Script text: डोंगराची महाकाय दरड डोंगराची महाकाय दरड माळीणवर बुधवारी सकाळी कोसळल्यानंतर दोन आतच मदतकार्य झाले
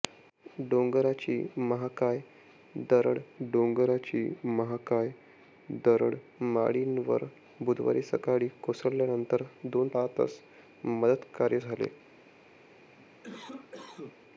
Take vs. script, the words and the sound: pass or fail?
fail